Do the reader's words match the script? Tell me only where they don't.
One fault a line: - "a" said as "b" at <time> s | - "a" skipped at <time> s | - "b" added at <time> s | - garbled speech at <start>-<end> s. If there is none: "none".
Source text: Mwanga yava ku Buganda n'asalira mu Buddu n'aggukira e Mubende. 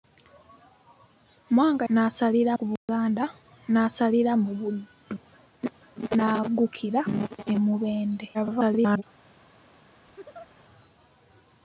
- "yava" said as "n'asalira" at 1.9 s
- garbled speech at 8.3-9.0 s